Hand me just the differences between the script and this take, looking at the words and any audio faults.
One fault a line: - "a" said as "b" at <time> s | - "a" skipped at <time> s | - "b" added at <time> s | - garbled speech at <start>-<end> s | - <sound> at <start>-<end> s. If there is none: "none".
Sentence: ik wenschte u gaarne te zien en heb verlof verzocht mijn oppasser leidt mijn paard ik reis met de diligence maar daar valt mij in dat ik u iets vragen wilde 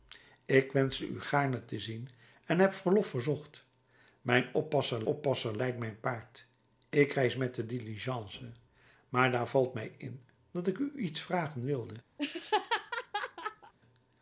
- "oppasser" added at 5.0 s
- laugh at 12.2-13.7 s